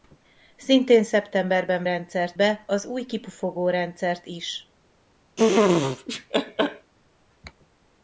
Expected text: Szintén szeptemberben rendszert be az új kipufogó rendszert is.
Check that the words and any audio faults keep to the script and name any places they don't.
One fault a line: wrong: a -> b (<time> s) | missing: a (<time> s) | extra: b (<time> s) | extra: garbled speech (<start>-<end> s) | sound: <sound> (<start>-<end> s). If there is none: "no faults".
sound: laugh (5.4-6.9 s)